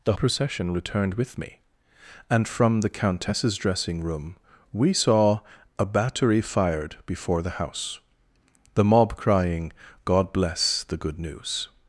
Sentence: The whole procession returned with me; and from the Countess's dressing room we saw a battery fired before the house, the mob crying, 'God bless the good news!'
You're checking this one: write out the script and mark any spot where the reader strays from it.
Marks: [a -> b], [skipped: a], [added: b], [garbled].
The [skipped: whole] procession returned with me; and from the Countess's dressing room we saw a battery fired before the house, the mob crying, 'God bless the good news!'